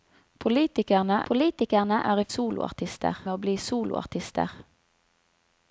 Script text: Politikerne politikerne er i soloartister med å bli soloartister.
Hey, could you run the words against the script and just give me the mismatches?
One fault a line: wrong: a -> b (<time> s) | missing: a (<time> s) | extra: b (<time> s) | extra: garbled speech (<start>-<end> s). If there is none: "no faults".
no faults